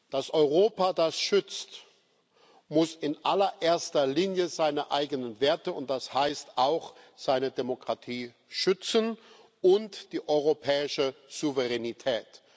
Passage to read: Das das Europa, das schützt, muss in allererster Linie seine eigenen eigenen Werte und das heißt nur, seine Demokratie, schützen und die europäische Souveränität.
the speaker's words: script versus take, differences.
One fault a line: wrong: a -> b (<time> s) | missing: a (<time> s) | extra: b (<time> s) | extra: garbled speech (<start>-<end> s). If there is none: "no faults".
missing: das (0.3 s)
missing: eigenen (5.4 s)
wrong: nur -> auch (6.5 s)